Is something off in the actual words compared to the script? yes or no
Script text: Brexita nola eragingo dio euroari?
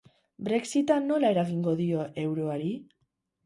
no